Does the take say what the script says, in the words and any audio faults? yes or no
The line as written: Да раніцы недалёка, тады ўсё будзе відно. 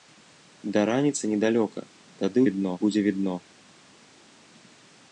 no